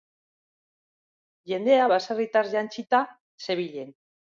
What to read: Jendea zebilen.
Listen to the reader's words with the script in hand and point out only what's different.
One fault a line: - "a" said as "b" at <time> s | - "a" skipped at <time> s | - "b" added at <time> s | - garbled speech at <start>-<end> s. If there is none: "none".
- "baserritar jantzita" added at 1.9 s